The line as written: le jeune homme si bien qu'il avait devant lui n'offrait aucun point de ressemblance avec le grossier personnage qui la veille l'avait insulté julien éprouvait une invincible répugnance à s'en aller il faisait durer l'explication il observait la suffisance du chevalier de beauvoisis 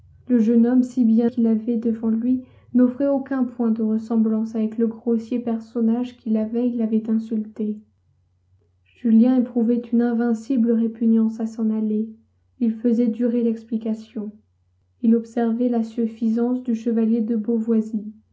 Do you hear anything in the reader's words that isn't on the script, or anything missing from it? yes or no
no